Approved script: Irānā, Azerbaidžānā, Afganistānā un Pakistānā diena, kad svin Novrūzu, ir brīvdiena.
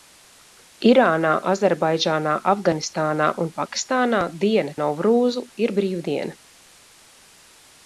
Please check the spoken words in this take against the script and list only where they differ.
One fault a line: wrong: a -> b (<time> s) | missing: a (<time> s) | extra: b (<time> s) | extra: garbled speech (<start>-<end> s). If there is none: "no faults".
missing: kad svin (4.8 s)